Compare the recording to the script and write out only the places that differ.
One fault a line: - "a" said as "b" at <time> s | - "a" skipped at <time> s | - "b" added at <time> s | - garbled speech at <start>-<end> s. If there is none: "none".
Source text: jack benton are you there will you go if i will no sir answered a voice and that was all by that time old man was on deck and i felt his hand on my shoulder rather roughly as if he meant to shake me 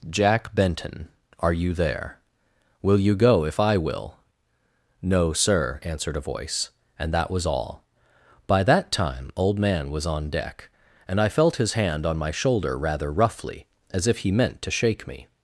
none